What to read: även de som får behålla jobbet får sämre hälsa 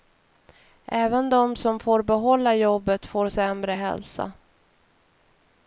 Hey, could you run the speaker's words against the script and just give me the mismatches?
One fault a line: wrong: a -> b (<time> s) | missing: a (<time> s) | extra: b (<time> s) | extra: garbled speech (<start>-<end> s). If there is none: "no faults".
no faults